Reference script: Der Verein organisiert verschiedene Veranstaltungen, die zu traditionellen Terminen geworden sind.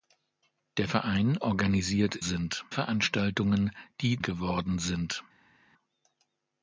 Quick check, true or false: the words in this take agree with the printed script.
false